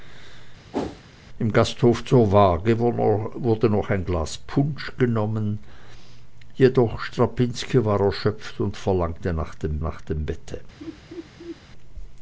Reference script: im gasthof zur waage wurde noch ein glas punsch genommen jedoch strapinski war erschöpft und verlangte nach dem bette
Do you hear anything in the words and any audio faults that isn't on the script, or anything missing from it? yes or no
yes